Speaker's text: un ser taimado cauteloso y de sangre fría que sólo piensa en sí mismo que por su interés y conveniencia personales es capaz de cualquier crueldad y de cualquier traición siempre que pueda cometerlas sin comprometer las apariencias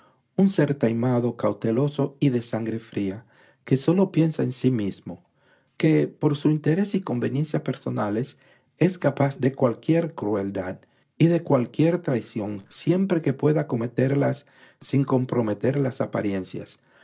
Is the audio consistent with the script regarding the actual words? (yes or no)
yes